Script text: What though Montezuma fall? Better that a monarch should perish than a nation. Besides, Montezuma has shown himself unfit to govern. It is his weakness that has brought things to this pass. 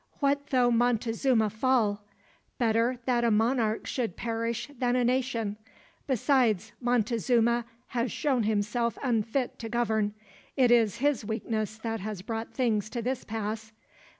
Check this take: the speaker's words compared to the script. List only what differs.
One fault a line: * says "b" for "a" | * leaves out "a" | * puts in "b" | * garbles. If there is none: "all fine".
all fine